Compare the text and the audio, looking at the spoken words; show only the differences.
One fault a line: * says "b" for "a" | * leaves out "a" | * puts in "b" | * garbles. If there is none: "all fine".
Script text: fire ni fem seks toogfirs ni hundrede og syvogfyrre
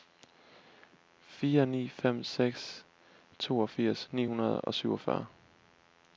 all fine